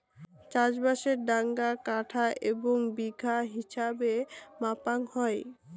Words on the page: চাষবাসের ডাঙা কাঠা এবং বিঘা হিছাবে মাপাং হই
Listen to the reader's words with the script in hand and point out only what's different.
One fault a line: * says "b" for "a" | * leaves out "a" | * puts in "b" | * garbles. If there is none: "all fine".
all fine